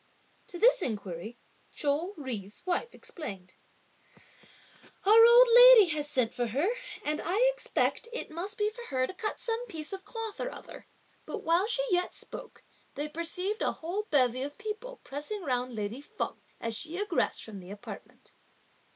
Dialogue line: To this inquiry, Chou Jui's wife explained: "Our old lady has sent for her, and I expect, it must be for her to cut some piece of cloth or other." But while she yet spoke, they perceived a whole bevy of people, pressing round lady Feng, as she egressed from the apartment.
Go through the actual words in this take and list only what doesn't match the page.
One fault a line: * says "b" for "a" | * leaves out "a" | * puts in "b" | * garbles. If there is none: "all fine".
all fine